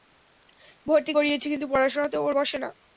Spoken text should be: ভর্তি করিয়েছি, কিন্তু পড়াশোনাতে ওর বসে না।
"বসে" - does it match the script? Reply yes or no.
yes